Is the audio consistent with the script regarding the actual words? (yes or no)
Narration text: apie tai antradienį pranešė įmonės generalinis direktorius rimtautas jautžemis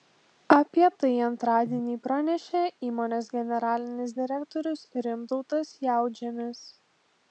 yes